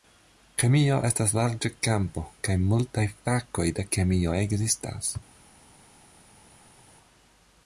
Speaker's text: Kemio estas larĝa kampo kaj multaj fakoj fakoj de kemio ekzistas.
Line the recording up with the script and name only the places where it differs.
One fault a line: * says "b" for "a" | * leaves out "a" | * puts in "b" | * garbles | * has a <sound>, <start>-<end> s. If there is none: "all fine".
* leaves out "fakoj"